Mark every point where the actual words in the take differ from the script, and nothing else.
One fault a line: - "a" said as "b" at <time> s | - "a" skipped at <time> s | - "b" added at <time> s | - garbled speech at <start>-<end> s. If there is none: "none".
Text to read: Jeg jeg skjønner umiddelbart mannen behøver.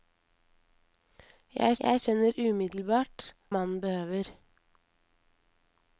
none